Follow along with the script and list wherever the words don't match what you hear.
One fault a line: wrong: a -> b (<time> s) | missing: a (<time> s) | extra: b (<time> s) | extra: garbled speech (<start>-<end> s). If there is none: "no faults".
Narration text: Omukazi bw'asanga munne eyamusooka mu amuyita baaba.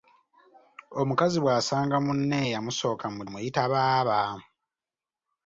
no faults